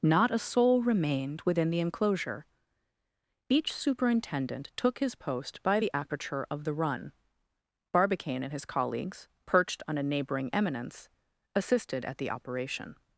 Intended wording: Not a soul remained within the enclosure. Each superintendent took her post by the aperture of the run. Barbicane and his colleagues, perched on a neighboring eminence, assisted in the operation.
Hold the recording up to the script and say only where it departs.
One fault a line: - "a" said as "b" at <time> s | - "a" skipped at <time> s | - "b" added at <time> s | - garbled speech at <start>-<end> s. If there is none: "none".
- "her" said as "his" at 5.0 s
- "in" said as "at" at 12.0 s